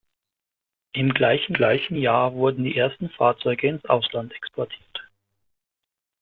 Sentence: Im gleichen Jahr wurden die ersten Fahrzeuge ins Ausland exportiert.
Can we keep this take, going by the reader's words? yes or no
no